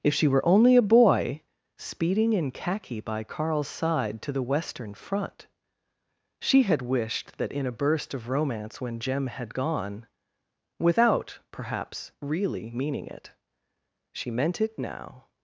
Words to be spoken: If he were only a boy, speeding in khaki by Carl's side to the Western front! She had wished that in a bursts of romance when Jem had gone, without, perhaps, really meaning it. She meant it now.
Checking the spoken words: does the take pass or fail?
fail